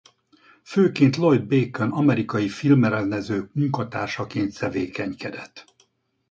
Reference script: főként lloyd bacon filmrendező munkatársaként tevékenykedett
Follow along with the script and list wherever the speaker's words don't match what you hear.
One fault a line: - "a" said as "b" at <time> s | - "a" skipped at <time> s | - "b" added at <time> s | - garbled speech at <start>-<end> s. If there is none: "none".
- "amerikai" added at 1.9 s